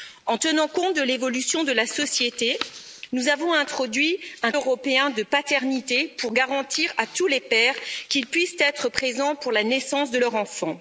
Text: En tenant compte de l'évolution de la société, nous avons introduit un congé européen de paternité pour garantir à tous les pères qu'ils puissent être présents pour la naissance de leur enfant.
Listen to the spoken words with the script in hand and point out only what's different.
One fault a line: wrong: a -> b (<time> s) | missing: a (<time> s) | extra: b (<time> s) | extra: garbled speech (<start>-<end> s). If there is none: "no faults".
missing: congé (4.5 s)